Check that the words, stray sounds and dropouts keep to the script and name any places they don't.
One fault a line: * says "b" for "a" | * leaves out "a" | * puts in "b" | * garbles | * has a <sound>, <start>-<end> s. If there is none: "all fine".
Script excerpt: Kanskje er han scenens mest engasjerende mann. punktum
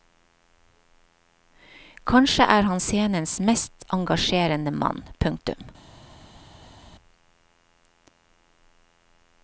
all fine